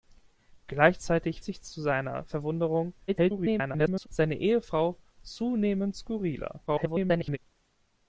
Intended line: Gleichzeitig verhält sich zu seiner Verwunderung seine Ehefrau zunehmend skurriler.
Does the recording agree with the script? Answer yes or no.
no